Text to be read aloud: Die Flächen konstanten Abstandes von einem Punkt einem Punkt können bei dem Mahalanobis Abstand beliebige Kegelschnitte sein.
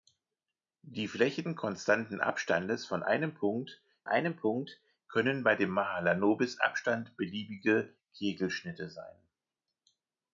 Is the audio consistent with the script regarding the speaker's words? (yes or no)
yes